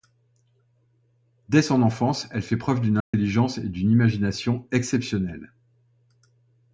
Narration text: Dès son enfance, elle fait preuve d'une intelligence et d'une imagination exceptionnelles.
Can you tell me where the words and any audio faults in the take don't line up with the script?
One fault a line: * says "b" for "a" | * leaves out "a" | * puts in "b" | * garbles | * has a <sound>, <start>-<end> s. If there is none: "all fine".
* has a dropout, 3.0-3.1 s